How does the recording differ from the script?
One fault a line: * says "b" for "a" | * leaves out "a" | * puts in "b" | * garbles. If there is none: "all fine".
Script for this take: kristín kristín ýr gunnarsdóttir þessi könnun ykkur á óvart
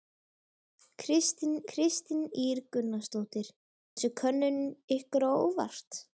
all fine